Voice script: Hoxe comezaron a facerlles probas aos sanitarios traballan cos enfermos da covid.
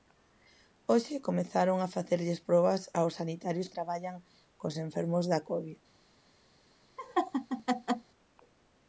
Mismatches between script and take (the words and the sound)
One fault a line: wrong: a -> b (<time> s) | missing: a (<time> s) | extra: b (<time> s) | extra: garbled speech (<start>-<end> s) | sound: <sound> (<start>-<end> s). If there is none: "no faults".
sound: laugh (7.0-8.1 s)